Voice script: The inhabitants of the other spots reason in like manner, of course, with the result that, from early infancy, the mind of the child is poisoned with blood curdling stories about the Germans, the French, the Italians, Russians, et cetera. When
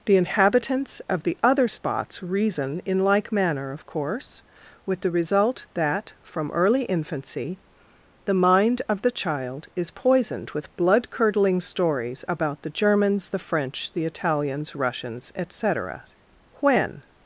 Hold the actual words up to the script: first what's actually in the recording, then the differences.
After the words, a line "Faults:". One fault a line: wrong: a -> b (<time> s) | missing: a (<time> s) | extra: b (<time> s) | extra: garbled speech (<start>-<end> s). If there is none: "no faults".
The inhabitants of the other spots reason in like manner, of course, with the result that, from early infancy, the mind of the child is poisoned with blood curdling stories about the Germans, the French, the Italians, Russians, et cetera. When
Faults:
no faults